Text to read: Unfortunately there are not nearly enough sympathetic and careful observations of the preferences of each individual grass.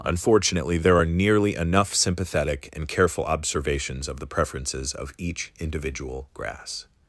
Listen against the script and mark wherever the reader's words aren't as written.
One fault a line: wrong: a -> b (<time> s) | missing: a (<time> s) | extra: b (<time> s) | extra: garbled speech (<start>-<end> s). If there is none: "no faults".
missing: not (1.1 s)